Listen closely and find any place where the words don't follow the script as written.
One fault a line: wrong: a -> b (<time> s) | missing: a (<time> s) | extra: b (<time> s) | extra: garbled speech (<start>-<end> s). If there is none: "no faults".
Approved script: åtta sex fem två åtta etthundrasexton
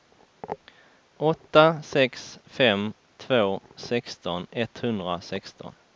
wrong: åtta -> sexton (3.8 s)